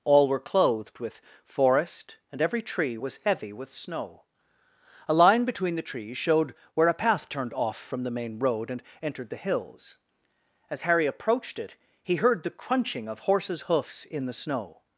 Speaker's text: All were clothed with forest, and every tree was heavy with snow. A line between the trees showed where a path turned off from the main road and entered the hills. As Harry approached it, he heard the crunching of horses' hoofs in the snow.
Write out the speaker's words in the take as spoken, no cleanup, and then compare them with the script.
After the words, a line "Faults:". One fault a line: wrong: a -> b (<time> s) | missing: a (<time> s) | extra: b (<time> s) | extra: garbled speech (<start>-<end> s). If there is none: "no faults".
All were clothed with forest, and every tree was heavy with snow. A line between the trees showed where a path turned off from the main road and entered the hills. As Harry approached it, he heard the crunching of horses' hoofs in the snow.
Faults:
no faults